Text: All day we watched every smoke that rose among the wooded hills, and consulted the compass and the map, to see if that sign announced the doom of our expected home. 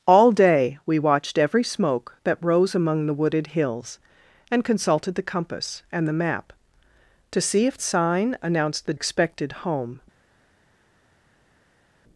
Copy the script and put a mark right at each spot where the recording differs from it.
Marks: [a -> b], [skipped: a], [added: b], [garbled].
All day we watched every smoke that rose among the wooded hills, and consulted the compass and the map, to see if [skipped: that] sign announced the [skipped: doom of our] expected home.